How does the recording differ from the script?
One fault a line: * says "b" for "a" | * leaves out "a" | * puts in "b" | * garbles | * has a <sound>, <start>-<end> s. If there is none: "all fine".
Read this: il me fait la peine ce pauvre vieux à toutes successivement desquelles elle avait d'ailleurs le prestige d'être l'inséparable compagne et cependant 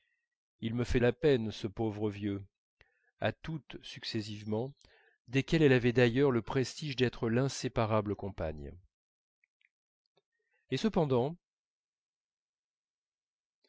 all fine